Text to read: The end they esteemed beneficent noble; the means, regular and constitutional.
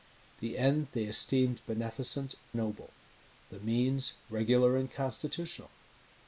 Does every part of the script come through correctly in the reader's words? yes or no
yes